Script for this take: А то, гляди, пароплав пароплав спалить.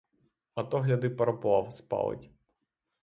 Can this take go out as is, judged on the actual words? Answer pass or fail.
fail